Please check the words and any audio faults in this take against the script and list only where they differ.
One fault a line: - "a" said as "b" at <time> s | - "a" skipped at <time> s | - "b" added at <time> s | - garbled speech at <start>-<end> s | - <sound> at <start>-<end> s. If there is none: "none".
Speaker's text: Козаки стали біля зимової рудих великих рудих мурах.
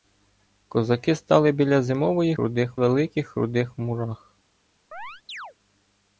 - chirp at 4.9-5.5 s